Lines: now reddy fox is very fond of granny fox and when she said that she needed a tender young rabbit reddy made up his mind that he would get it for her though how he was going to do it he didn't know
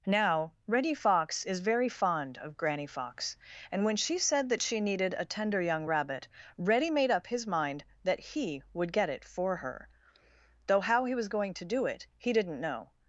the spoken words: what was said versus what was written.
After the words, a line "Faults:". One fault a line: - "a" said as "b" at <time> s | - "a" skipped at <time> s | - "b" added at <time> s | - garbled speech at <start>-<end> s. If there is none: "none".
now reddy fox is very fond of granny fox and when she said that she needed a tender young rabbit reddy made up his mind that he would get it for her though how he was going to do it he didn't know
Faults:
none